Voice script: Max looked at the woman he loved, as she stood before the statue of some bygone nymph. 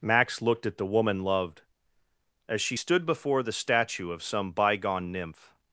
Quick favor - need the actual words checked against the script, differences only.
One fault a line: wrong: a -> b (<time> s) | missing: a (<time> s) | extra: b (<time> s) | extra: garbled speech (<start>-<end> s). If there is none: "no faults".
missing: he (1.2 s)